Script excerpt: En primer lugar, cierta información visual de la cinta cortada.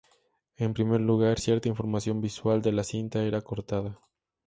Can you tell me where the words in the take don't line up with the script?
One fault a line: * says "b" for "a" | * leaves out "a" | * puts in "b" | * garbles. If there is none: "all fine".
* puts in "era"